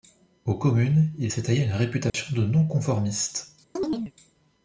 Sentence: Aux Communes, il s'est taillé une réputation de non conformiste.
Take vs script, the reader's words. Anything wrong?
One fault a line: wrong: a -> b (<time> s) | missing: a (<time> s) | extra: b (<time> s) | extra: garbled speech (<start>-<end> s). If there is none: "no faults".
no faults